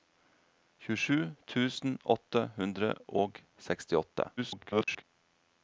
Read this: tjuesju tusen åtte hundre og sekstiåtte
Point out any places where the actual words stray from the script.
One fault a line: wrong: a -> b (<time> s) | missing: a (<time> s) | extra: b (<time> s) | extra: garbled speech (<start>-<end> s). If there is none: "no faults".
extra: garbled speech (4.4-5.0 s)